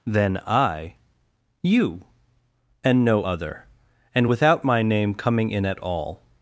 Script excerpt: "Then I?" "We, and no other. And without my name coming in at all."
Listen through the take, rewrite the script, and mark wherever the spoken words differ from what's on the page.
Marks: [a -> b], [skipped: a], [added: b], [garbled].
"Then I?" ["We, -> You] and no other. And without my name coming in at all."